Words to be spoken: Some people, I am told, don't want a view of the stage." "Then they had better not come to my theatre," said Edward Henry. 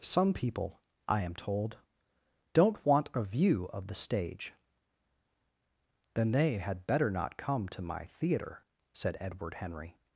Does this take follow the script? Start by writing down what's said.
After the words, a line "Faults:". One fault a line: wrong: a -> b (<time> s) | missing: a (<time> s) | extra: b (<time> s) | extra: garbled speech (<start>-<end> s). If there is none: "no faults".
Some people, I am told, don't want a view of the stage." "Then they had better not come to my theatre," said Edward Henry.
Faults:
no faults